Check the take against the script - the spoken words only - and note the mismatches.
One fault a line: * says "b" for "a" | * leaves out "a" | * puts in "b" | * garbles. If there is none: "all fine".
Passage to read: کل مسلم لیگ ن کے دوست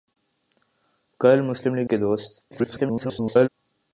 * leaves out "ن"
* garbles